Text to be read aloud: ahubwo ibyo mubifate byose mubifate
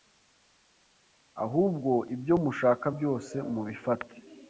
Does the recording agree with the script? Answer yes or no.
no